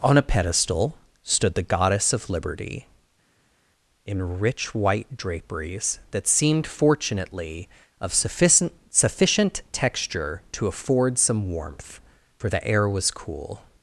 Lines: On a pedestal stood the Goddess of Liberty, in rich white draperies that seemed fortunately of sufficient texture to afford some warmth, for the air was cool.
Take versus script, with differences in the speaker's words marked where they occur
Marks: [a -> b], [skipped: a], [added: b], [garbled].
On a pedestal stood the Goddess of Liberty, in rich white draperies that seemed fortunately of sufficient [added: sufficient] texture to afford some warmth, for the air was cool.